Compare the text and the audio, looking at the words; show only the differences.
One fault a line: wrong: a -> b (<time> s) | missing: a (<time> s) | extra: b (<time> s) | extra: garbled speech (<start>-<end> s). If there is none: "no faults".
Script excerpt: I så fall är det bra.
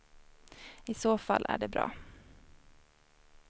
no faults